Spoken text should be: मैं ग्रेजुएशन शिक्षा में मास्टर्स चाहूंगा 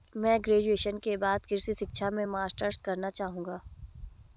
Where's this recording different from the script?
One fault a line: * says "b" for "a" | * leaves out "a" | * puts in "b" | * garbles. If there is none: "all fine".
* puts in "के बाद कृषि"
* puts in "करना"